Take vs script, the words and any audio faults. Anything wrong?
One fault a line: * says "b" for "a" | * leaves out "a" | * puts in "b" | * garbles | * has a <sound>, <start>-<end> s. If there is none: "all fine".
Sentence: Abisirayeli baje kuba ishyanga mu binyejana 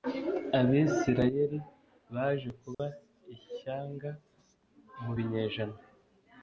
* has a dropout, 2.7-2.8 s